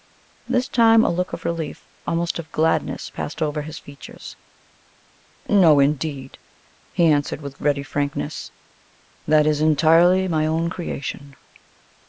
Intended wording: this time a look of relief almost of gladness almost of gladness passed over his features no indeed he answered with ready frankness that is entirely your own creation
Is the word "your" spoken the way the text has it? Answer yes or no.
no